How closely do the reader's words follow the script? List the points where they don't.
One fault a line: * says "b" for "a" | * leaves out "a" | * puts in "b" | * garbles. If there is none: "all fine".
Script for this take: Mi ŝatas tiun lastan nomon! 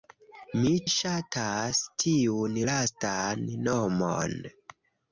all fine